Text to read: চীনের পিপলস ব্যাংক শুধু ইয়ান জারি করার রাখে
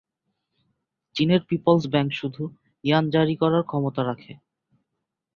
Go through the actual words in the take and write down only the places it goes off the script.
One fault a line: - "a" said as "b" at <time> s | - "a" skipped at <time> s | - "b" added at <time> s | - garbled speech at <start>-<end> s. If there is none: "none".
- "ক্ষমতা" added at 3.6 s